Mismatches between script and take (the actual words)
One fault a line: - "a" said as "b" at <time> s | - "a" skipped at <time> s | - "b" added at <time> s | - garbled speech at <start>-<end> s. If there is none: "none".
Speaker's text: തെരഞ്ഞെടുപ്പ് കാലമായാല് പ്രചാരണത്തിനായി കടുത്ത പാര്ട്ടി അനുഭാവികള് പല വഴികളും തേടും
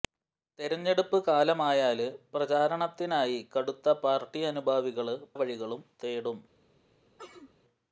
- "പല" skipped at 5.2 s